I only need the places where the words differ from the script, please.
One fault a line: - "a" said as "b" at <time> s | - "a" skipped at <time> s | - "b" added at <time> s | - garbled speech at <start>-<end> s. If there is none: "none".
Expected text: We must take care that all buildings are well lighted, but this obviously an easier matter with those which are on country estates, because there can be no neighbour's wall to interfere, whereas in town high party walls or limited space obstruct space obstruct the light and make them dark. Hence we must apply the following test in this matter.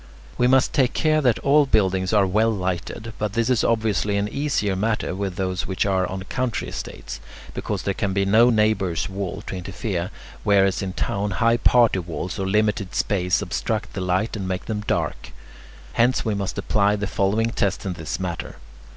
- "is" added at 3.5 s
- "space obstruct" skipped at 13.9 s